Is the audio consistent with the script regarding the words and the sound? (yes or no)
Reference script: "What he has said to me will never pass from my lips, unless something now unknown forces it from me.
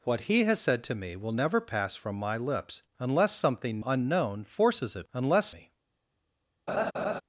no